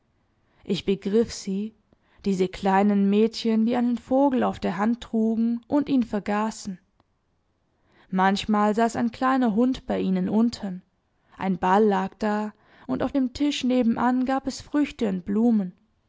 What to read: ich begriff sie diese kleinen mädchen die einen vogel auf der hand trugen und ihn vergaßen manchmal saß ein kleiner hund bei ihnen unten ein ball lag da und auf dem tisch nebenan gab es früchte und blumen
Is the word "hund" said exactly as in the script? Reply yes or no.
yes